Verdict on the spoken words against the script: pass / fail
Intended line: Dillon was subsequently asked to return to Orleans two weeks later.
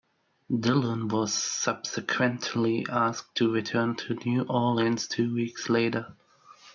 fail